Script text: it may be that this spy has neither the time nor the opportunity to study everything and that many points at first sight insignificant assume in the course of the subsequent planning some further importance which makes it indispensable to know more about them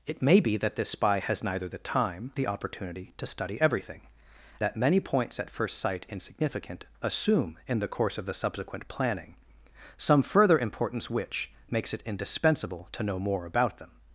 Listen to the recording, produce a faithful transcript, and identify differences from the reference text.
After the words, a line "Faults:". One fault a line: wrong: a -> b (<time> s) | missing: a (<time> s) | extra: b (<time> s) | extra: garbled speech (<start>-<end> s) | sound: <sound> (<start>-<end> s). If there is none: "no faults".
it may be that this spy has neither the time the opportunity to study everything that many points at first sight insignificant assume in the course of the subsequent planning some further importance which makes it indispensable to know more about them
Faults:
missing: nor (2.3 s)
missing: and (4.0 s)